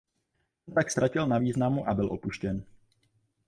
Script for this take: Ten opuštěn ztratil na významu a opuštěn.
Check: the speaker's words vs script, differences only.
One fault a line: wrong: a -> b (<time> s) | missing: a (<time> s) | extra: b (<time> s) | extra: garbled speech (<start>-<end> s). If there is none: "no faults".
wrong: opuštěn -> tak (0.8 s)
extra: byl (1.9 s)